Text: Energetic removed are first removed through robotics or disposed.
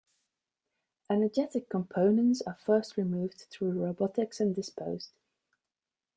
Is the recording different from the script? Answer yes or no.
yes